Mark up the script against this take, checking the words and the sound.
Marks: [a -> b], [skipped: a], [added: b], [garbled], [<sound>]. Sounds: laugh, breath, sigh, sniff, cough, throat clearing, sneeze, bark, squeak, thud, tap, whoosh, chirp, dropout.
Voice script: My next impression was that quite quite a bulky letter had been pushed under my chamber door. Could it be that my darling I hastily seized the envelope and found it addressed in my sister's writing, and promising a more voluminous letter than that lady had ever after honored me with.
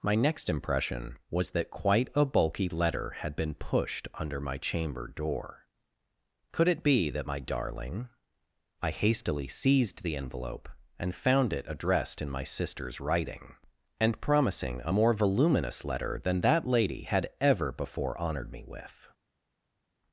My next impression was that quite [skipped: quite] a bulky letter had been pushed under my chamber door. Could it be that my darling I hastily seized the envelope and found it addressed in my sister's writing, and promising a more voluminous letter than that lady had ever [after -> before] honored me with.